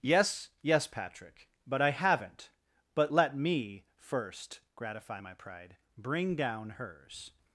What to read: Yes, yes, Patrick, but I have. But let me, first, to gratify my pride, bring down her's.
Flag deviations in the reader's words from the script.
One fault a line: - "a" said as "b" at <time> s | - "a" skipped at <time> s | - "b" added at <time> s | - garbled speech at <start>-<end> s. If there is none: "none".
- "have" said as "haven't" at 1.9 s
- "to" skipped at 4.6 s